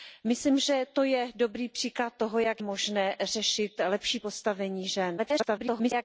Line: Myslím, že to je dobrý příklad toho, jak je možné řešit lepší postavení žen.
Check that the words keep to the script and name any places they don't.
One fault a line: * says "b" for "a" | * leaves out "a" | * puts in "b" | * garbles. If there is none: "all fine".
* leaves out "je"
* garbles